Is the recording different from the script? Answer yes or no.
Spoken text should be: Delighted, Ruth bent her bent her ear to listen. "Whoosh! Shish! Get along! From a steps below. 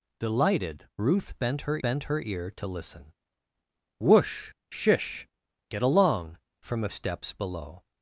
no